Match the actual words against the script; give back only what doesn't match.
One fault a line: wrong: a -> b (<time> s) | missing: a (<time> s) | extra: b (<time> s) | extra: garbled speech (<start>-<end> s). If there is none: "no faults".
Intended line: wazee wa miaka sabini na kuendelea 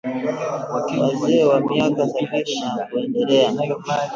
no faults